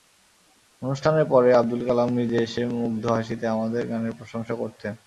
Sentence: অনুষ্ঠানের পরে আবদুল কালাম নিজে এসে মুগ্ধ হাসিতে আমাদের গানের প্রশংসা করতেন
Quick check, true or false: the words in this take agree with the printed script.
true